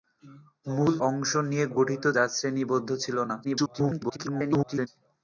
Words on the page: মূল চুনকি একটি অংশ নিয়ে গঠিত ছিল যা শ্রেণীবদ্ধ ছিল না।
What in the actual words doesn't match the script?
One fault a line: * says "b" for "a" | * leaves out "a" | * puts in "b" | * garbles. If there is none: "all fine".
* leaves out "চুনকি একটি"
* leaves out "ছিল"
* garbles